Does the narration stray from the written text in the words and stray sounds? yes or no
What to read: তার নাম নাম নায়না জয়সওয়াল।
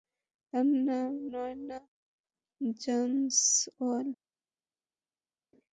yes